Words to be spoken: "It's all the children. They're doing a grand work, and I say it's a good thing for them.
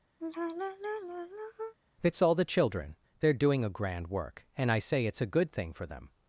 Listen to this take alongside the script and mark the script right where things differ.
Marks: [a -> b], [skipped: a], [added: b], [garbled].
"It's all the children. They're doing a grand work, and I say it's a good thing for them.